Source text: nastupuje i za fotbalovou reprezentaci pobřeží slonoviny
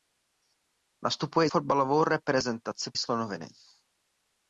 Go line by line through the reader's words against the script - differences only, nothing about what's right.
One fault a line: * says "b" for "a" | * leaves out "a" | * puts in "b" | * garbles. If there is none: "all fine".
* leaves out "za"
* leaves out "pobřeží"